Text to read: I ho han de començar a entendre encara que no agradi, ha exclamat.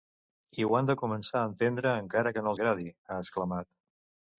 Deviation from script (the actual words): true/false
false